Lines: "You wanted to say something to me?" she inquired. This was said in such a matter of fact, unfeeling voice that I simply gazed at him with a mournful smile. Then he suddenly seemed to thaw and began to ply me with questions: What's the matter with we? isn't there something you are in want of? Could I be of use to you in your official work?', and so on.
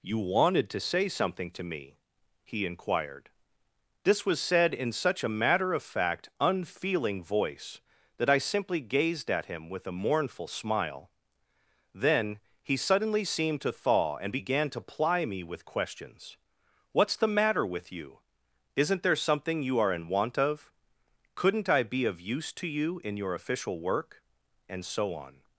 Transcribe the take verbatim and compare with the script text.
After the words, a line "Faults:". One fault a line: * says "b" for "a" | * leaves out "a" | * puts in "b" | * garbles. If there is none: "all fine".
"You wanted to say something to me?" he inquired. This was said in such a matter of fact, unfeeling voice that I simply gazed at him with a mournful smile. Then he suddenly seemed to thaw and began to ply me with questions: What's the matter with you? isn't there something you are in want of? Couldn't I be of use to you in your official work?', and so on.
Faults:
* says "he" for "she"
* says "you" for "we"
* says "Couldn't" for "Could"